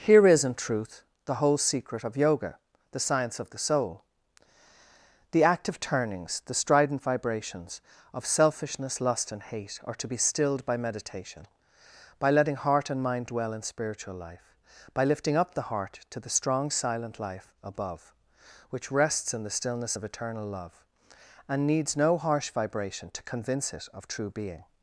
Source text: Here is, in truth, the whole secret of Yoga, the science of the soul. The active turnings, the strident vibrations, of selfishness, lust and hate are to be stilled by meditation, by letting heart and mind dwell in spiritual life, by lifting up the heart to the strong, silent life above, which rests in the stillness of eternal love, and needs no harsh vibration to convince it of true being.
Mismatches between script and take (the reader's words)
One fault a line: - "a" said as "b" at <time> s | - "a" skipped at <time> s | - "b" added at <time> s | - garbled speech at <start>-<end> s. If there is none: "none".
none